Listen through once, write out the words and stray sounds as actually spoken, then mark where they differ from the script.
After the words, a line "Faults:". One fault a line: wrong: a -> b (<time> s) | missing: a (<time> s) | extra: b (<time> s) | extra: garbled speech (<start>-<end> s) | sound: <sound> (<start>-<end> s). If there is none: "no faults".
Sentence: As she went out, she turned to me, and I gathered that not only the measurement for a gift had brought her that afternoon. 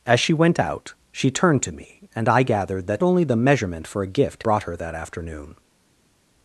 As she went out, she turned to me, and I gathered that only the measurement for a gift brought her that afternoon.
Faults:
missing: not (3.0 s)
missing: had (4.4 s)